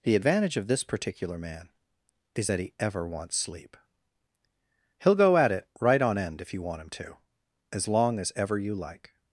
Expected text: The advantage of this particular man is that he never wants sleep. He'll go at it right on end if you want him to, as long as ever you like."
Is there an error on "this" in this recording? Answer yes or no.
no